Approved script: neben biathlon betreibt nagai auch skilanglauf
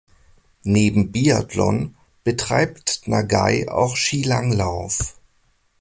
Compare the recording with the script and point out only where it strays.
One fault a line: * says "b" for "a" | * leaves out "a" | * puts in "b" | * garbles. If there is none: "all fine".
all fine